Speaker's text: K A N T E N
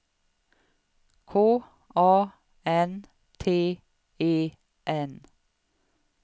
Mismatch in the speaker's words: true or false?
false